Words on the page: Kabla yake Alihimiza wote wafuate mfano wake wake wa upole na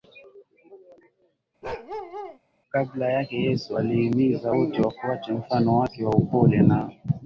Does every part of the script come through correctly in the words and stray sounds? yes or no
no